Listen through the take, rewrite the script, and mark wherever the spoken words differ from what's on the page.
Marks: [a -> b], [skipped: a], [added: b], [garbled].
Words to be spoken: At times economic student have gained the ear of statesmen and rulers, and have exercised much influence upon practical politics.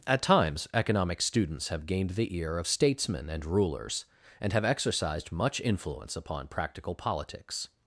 At times economic [student -> students] have gained the ear of statesmen and rulers, and have exercised much influence upon practical politics.